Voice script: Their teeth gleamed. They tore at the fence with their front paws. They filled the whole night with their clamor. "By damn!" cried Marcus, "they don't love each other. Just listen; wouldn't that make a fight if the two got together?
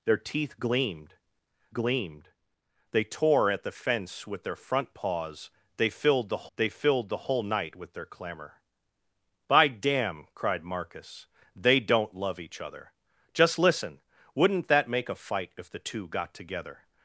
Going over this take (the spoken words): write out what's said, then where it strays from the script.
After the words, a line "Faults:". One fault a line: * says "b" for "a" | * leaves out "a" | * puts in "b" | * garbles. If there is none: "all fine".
Their teeth gleamed gleamed. They tore at the fence with their front paws. They filled the they filled the whole night with their clamor. "By damn!" cried Marcus, "they don't love each other. Just listen; wouldn't that make a fight if the two got together?
Faults:
* puts in "gleamed"
* puts in "they filled the"